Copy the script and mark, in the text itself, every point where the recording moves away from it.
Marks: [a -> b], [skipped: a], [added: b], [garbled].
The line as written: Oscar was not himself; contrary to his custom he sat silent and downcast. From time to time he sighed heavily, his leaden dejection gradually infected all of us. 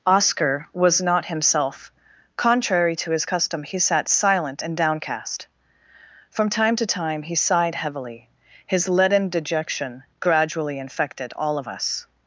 Oscar was not himself; contrary to his custom he sat silent and downcast. From time to time he sighed heavily, his leaden dejection gradually infected all of us.